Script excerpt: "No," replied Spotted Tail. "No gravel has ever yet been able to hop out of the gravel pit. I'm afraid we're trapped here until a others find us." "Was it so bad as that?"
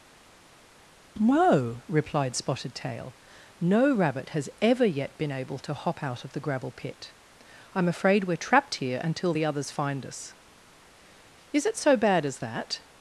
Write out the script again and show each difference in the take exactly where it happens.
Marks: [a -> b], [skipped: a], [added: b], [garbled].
"No," replied Spotted Tail. "No [gravel -> rabbit] has ever yet been able to hop out of the gravel pit. I'm afraid we're trapped here until [a -> the] others find us." ["Was -> Is] it so bad as that?"